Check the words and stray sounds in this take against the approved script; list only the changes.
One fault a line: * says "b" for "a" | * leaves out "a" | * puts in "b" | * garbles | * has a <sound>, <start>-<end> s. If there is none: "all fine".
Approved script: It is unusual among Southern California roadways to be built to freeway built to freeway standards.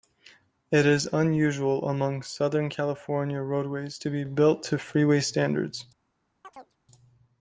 * leaves out "built to freeway"
* has a chirp, 6.4-6.8 s